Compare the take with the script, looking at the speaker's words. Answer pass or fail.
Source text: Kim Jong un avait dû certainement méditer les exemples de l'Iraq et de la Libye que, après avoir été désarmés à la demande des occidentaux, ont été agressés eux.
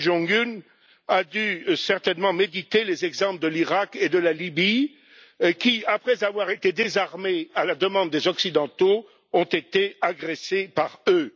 fail